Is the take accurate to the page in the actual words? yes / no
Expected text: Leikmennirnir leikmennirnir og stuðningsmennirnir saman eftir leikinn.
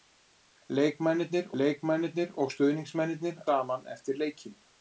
yes